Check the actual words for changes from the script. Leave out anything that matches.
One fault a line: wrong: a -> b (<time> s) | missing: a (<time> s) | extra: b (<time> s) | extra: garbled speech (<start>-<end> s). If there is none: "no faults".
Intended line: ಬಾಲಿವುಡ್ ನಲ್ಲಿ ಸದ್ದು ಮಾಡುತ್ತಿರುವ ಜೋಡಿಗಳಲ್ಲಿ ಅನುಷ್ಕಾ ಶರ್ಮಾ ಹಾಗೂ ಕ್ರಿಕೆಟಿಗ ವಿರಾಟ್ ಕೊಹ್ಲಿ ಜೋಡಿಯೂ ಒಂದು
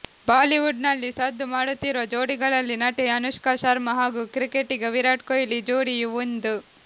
extra: ನಟಿ (2.8 s)